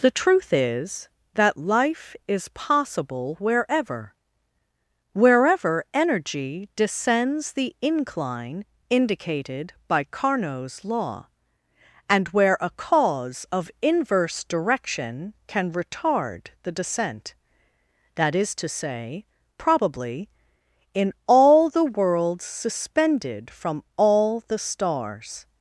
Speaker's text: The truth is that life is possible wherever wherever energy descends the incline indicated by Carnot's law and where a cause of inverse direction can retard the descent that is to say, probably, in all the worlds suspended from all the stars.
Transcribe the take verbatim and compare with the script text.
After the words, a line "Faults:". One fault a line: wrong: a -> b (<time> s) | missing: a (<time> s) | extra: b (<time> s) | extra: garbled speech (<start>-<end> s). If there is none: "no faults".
The truth is that life is possible wherever wherever energy descends the incline indicated by Carnot's law and where a cause of inverse direction can retard the descent that is to say, probably, in all the worlds suspended from all the stars.
Faults:
no faults